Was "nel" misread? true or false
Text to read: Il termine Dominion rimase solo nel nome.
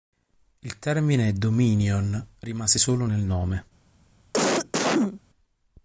false